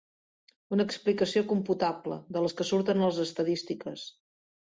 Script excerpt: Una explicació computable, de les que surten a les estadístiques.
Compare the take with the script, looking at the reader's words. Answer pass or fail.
pass